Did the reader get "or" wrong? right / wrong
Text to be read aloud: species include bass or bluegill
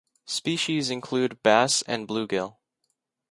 wrong